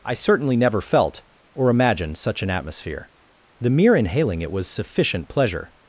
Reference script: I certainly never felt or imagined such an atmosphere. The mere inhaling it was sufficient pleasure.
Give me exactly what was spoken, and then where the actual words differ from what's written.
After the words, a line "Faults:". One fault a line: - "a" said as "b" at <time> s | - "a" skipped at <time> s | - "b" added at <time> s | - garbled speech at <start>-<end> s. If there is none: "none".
I certainly never felt or imagined such an atmosphere. The mere inhaling it was sufficient pleasure.
Faults:
none